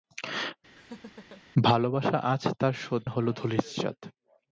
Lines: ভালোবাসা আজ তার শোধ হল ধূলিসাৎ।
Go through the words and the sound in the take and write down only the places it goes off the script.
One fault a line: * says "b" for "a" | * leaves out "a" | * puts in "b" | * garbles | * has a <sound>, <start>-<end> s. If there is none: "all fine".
* has a laugh, 0.8-1.4 s